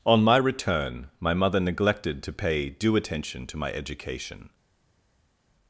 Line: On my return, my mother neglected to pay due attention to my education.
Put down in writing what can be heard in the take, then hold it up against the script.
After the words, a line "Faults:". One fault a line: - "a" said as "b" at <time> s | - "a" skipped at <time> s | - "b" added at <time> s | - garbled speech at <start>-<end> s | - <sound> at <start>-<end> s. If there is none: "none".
On my return, my mother neglected to pay due attention to my education.
Faults:
none